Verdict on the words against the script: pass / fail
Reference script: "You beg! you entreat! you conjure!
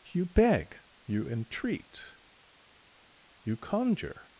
pass